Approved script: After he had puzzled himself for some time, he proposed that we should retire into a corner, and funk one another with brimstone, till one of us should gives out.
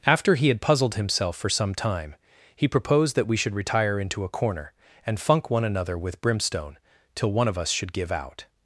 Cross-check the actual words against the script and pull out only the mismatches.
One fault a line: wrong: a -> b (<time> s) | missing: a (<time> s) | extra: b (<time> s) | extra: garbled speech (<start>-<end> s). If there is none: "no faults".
wrong: gives -> give (7.9 s)